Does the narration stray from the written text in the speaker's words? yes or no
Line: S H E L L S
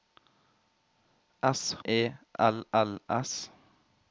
yes